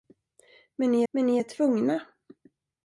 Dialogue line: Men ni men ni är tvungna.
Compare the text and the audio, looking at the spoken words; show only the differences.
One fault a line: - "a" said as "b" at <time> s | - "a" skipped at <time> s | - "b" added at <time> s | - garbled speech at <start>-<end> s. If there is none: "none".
none